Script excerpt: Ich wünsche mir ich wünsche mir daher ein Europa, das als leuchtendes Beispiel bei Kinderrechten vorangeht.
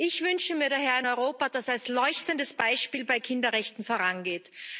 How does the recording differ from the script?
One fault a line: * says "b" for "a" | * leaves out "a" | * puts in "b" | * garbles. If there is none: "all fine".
* leaves out "ich wünsche mir"